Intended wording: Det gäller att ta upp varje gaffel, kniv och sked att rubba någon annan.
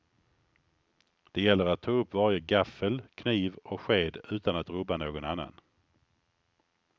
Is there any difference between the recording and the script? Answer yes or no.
yes